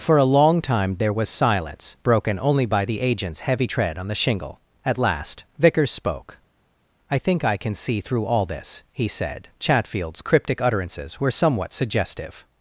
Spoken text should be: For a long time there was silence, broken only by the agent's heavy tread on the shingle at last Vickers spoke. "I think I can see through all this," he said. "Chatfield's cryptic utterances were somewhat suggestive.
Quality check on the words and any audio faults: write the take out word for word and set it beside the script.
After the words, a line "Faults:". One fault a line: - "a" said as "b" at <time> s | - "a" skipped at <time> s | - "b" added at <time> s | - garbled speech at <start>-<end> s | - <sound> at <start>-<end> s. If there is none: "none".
For a long time there was silence, broken only by the agent's heavy tread on the shingle at last Vickers spoke. "I think I can see through all this," he said. "Chatfield's cryptic utterances were somewhat suggestive.
Faults:
none